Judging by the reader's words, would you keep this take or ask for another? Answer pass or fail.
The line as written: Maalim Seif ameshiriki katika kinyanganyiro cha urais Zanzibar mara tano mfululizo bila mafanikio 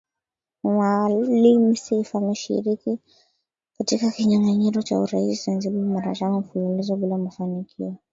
pass